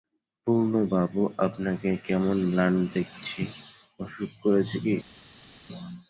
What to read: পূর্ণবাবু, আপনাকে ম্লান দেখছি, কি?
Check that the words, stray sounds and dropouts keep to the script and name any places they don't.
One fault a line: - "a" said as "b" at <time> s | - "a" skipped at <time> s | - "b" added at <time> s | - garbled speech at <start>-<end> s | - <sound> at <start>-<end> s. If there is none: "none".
- "কেমন" added at 2.1 s
- "অসুখ করেছে" added at 4.0 s